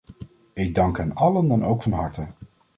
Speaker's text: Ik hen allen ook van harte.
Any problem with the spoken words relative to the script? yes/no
yes